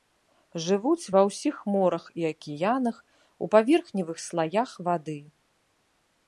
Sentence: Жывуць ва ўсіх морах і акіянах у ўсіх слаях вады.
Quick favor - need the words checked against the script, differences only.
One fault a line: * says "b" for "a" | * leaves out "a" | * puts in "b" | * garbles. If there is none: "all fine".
* says "паверхневых" for "ўсіх"